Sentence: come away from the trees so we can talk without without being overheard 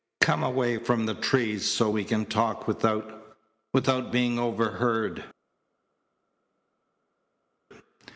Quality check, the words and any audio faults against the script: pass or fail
pass